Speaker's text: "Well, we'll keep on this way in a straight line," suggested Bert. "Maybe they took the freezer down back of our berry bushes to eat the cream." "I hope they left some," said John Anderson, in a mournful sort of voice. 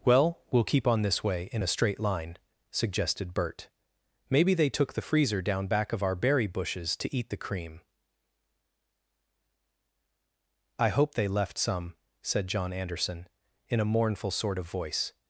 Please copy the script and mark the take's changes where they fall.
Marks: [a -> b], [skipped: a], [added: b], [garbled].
"Well, we'll keep on this way in a straight line," suggested Bert. "Maybe they took the freezer down back of our berry bushes to eat the cream." "I hope they left some," said John Anderson, in a mournful sort of voice.